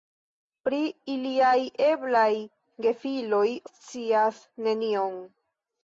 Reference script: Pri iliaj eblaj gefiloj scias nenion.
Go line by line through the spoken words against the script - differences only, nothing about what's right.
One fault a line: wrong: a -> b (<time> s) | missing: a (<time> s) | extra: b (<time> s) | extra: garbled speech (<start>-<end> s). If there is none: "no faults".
no faults